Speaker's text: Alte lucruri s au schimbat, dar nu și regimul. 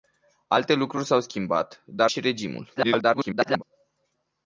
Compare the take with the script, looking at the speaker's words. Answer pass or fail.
fail